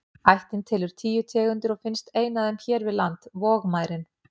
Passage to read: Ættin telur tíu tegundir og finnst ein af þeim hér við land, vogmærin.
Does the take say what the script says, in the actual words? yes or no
yes